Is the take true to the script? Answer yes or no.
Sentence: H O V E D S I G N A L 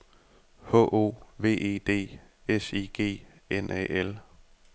yes